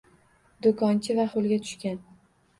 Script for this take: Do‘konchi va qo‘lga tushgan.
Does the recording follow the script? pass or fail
pass